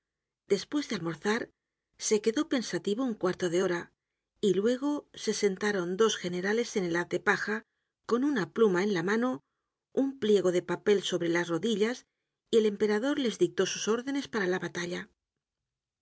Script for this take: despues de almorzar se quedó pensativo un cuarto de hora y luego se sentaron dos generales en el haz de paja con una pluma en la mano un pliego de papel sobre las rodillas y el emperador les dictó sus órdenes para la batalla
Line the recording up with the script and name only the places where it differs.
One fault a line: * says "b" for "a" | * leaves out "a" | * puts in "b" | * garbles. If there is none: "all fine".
all fine